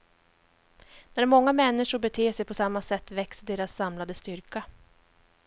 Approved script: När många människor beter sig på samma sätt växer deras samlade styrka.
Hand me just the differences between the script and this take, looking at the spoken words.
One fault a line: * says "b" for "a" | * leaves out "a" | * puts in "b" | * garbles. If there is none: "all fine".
all fine